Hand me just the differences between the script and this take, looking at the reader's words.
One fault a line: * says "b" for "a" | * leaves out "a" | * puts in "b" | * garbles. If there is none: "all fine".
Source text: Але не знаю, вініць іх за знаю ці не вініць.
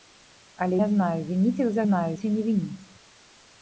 all fine